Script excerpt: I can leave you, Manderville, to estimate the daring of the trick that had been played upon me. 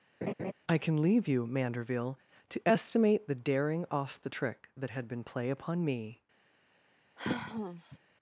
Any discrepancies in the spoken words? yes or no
yes